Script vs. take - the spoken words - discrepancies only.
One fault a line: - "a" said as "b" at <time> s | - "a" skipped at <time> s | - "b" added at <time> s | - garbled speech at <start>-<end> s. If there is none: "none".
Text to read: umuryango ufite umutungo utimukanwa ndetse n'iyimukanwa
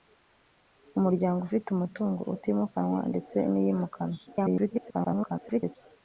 - garbled speech at 4.3-5.8 s